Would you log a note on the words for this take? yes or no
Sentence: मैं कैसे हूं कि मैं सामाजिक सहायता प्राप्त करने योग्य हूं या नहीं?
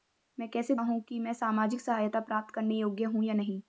no